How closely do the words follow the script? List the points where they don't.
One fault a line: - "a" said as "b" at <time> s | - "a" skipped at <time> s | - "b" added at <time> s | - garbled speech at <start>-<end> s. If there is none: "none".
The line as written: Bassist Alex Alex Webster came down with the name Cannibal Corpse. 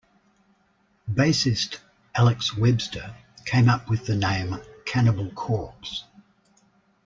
- "Alex" skipped at 2.6 s
- "down" said as "up" at 3.7 s